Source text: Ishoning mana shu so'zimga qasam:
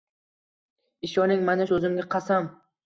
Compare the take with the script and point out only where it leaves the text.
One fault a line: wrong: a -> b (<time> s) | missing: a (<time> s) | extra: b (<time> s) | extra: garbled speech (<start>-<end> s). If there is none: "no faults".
missing: shu (1.7 s)